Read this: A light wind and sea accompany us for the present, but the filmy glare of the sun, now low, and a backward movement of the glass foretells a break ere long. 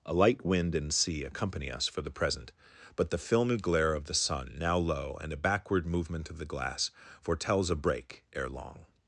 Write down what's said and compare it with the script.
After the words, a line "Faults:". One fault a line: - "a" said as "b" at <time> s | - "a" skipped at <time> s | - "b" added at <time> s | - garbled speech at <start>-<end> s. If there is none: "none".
A light wind and sea accompany us for the present, but the filmy glare of the sun, now low, and a backward movement of the glass foretells a break ere long.
Faults:
none